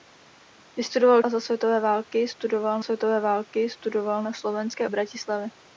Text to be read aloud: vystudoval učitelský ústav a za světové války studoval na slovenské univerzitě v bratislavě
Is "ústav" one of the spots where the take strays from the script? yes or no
yes